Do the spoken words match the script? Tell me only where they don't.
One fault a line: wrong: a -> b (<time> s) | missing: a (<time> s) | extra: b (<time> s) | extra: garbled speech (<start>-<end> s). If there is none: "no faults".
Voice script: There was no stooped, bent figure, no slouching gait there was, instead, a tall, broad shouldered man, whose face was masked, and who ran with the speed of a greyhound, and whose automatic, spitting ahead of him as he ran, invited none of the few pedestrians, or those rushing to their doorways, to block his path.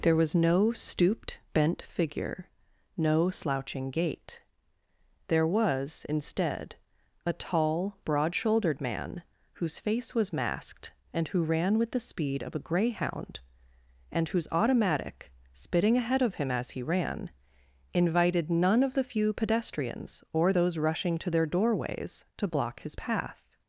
no faults